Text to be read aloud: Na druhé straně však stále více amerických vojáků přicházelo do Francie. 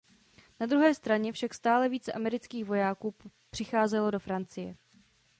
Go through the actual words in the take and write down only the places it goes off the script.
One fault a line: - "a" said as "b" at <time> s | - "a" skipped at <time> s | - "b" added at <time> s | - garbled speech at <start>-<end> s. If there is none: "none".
none